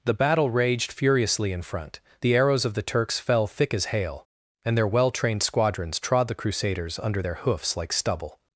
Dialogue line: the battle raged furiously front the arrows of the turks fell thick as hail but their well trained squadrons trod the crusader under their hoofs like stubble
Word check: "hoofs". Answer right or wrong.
right